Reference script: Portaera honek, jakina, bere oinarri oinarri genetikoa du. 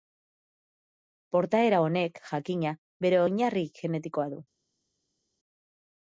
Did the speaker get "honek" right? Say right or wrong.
right